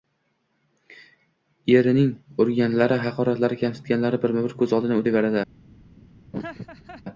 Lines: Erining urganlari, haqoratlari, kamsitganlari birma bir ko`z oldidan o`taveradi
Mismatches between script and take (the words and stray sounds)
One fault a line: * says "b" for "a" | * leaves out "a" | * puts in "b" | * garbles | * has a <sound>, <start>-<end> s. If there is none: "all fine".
* has a laugh, 6.3-7.0 s